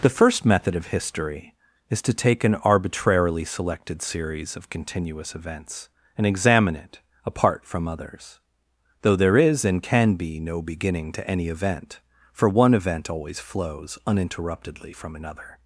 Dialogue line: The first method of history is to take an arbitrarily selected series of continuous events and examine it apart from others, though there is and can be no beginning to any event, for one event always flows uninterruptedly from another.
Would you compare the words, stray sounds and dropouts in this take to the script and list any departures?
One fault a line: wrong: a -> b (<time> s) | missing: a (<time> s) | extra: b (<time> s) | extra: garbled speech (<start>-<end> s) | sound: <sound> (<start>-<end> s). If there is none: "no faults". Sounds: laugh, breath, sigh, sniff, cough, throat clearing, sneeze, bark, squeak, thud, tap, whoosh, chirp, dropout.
no faults